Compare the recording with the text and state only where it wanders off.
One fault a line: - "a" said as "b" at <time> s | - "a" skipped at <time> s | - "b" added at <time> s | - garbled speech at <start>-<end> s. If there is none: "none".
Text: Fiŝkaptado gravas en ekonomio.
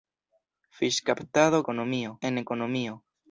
- "gravas" said as "ekonomio" at 1.6 s